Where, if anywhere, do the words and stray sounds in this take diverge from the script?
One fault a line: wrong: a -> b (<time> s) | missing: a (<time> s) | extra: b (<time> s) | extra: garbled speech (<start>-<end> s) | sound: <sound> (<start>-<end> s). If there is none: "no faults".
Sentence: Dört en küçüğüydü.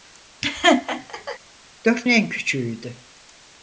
sound: laugh (0.4-1.4 s)